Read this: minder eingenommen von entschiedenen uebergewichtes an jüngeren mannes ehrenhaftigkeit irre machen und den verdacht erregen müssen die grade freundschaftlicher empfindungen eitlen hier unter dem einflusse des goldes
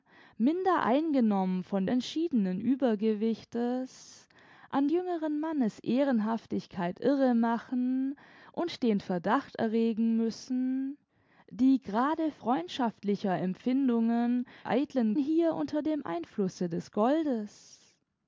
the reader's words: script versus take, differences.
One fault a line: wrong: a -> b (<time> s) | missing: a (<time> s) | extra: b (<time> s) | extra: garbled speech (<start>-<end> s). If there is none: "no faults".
no faults